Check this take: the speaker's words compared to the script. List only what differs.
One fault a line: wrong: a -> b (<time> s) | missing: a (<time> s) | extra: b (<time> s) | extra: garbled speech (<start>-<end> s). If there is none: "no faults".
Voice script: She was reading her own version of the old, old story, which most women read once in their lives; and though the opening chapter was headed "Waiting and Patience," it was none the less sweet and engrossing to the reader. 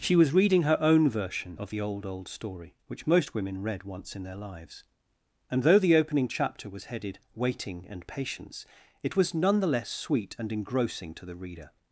no faults